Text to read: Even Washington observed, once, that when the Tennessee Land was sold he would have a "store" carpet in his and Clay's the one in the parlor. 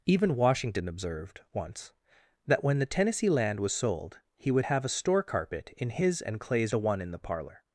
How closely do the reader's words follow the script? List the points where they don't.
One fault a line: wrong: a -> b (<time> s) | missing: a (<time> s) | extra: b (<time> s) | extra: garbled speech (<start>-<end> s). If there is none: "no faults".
no faults